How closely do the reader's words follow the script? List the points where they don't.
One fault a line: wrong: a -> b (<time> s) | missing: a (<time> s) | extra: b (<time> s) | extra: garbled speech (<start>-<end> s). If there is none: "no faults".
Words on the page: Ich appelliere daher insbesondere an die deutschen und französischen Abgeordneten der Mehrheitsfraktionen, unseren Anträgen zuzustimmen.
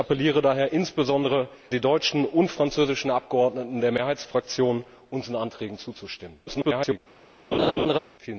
missing: an (1.5 s)
extra: garbled speech (6.5-7.0 s)